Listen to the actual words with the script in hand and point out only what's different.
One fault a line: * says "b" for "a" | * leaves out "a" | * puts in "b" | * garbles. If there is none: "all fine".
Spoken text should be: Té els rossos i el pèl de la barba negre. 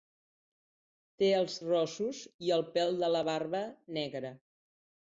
all fine